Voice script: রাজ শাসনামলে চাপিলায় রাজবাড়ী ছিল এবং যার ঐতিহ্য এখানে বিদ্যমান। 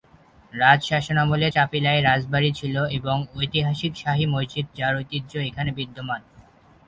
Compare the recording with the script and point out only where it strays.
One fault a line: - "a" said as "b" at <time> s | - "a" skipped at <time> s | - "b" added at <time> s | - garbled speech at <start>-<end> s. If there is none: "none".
- "ঐতিহাসিক শাহী মসজিদ" added at 3.4 s